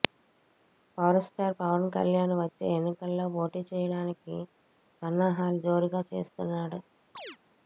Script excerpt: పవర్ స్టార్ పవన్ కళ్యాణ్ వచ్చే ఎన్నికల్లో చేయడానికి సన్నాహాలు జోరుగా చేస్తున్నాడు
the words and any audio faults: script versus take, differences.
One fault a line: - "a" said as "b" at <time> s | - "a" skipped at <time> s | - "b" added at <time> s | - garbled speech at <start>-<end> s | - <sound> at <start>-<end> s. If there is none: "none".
- "పోటీ" added at 3.4 s
- chirp at 7.1-7.4 s